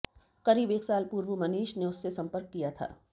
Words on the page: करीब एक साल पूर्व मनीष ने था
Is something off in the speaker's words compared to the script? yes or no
yes